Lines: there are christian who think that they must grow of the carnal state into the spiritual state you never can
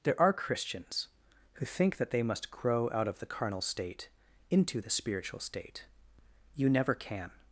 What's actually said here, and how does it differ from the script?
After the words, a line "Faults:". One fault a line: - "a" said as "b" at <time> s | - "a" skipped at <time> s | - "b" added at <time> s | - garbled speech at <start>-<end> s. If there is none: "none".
there are christians who think that they must grow out of the carnal state into the spiritual state you never can
Faults:
- "christian" said as "christians" at 0.3 s
- "out" added at 2.9 s